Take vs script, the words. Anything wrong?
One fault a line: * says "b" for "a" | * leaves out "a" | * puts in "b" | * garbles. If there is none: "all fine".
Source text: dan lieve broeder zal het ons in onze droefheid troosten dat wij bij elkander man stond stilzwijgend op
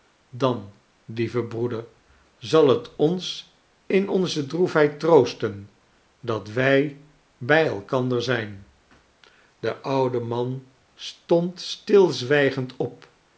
* puts in "zijn de oude"